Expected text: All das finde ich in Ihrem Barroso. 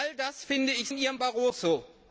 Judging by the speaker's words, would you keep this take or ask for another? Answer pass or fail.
pass